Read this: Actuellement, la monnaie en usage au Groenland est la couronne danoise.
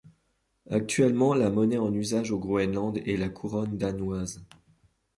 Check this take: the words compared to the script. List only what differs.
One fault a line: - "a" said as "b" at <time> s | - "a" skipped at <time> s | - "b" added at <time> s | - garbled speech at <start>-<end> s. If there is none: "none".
none